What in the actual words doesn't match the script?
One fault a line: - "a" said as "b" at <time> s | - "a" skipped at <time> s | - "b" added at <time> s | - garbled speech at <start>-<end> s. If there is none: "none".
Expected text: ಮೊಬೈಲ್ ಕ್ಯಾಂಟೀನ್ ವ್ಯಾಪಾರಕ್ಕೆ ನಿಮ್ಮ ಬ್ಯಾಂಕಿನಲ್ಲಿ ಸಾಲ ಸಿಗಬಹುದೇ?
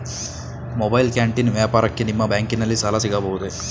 none